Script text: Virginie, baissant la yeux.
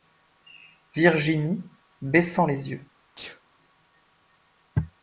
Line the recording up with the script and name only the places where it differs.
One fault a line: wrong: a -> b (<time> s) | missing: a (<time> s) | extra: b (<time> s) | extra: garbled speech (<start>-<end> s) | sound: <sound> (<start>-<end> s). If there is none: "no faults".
wrong: la -> les (2.5 s)
sound: sneeze (3.2-3.4 s)